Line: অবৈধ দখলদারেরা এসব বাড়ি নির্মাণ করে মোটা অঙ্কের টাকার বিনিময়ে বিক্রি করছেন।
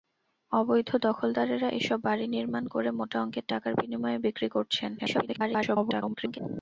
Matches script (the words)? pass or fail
fail